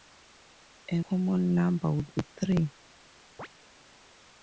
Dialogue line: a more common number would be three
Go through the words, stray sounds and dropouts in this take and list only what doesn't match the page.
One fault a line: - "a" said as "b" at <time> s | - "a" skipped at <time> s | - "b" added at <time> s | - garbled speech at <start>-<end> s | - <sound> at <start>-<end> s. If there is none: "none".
- "more" skipped at 1.0 s
- chirp at 3.4-3.5 s